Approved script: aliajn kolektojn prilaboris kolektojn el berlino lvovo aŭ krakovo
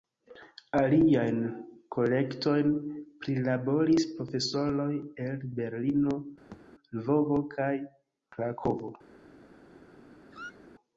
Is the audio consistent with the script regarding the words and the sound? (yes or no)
no